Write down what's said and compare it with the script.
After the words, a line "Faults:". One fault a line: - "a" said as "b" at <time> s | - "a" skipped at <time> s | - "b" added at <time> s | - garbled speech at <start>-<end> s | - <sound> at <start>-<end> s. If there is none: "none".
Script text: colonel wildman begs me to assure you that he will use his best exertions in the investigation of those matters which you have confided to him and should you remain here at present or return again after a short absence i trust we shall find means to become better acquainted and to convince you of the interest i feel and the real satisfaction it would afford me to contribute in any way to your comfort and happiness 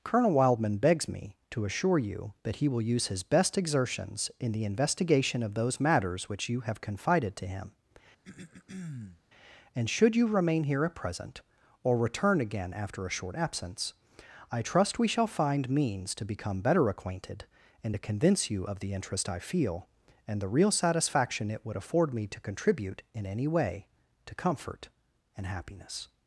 colonel wildman begs me to assure you that he will use his best exertions in the investigation of those matters which you have confided to him and should you remain here at present or return again after a short absence i trust we shall find means to become better acquainted and to convince you of the interest i feel and the real satisfaction it would afford me to contribute in any way to comfort and happiness
Faults:
- throat clearing at 8.2-9.2 s
- "your" skipped at 24.3 s